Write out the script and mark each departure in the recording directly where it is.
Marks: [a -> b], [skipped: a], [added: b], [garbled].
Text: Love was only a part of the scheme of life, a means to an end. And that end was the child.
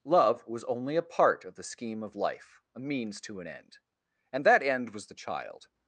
Love was only a part of the scheme of life, a means to an end. And that end was the child.